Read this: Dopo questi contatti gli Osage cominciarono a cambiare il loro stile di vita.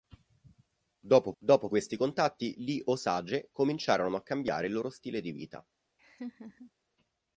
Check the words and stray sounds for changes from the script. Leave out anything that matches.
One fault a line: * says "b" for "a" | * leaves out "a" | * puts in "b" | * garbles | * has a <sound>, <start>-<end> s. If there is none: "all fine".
* puts in "dopo"
* has a laugh, 6.0-6.7 s